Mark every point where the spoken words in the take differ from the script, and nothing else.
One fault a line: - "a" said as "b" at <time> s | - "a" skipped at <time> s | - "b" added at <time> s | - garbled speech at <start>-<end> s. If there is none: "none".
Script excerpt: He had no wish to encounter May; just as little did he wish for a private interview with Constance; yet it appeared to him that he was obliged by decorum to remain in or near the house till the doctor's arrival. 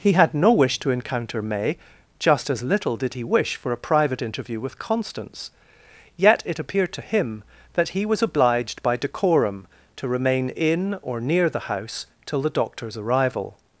none